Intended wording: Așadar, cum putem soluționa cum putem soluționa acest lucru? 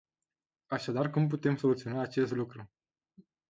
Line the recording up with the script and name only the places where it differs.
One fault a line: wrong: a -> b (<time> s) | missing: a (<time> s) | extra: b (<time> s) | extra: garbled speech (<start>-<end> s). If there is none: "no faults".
missing: cum putem soluționa (2.0 s)